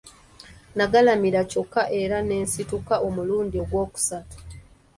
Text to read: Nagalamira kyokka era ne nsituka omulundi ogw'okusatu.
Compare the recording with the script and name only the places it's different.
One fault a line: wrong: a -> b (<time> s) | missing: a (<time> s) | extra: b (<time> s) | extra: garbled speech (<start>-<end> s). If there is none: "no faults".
no faults